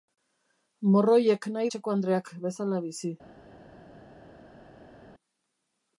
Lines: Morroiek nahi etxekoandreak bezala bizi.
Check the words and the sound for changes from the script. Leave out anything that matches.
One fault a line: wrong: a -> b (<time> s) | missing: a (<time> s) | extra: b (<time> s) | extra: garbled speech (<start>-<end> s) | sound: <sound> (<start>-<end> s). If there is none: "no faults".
no faults